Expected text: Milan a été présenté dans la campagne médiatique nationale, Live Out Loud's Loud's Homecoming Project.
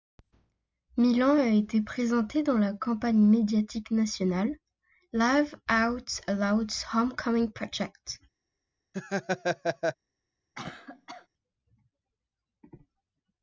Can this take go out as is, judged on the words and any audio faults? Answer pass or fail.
fail